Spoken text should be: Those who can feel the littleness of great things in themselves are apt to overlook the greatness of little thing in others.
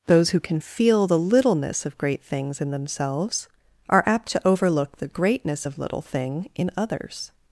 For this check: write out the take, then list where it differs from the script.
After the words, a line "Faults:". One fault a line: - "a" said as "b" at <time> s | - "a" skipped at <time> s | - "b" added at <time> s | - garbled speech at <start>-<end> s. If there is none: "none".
Those who can feel the littleness of great things in themselves are apt to overlook the greatness of little thing in others.
Faults:
none